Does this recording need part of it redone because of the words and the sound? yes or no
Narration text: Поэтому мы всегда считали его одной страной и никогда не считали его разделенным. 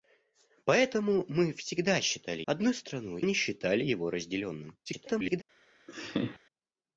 yes